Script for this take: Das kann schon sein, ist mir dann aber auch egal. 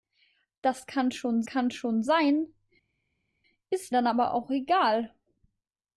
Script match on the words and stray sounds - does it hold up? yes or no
no